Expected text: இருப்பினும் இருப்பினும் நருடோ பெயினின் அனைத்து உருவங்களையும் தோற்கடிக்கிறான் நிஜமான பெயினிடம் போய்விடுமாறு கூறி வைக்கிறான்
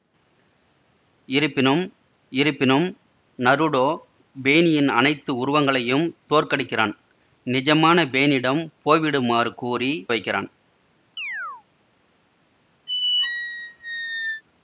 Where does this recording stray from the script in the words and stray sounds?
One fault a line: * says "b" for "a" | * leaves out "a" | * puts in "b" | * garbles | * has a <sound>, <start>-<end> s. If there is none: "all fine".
* has a chirp, 11.2-11.6 s
* has a squeak, 12.9-14.4 s